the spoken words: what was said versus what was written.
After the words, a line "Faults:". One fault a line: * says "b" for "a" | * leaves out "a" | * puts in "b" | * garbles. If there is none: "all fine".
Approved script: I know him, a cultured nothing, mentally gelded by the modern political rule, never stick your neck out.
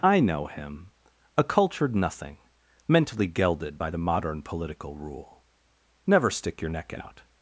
I know him, a cultured nothing, mentally gelded by the modern political rule, never stick your neck out.
Faults:
all fine